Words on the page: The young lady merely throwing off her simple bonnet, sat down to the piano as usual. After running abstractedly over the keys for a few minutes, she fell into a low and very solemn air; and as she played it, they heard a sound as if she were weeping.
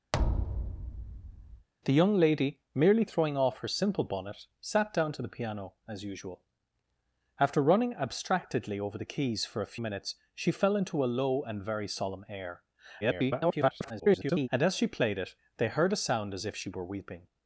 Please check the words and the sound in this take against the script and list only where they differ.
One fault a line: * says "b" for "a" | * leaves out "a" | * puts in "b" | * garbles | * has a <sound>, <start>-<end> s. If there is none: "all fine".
* has a thud, 0.1-1.7 s
* leaves out "few"
* garbles